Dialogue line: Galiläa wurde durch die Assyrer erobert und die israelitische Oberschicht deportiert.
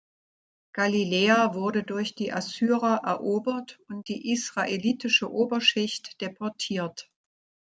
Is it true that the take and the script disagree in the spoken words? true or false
false